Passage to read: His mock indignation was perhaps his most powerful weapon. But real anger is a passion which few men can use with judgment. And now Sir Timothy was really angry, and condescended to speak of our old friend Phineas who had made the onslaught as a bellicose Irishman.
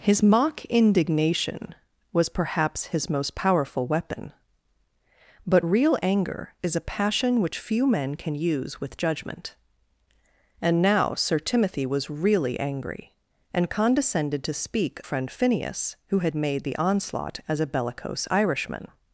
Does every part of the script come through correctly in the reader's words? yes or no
no